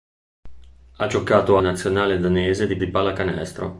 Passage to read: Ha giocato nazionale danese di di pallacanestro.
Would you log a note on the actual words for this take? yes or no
no